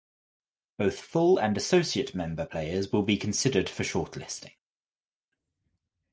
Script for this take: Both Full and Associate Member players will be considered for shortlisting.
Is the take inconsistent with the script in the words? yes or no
no